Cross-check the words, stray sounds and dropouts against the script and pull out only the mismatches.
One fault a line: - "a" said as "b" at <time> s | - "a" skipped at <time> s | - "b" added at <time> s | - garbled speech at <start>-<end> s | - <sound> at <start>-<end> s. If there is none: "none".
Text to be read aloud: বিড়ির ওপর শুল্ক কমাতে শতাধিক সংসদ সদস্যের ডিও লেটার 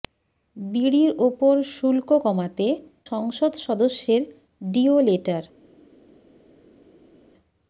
- "শতাধিক" skipped at 2.7 s